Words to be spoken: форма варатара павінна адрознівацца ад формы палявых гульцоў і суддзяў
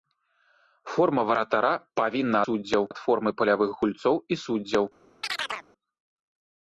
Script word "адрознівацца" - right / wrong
wrong